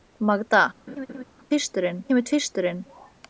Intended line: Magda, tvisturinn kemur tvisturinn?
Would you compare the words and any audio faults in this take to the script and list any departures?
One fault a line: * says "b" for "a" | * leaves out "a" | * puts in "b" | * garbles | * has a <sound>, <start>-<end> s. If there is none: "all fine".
* has a laugh, 0.9-1.2 s